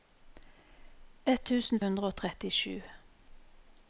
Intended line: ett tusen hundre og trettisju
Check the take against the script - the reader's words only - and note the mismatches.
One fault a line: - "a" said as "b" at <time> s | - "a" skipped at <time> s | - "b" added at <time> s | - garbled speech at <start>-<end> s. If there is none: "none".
none